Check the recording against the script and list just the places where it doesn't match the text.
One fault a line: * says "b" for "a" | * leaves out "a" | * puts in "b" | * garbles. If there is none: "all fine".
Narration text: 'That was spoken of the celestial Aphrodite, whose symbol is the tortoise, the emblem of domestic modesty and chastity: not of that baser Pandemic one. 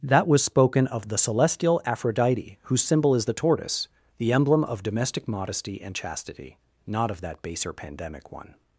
all fine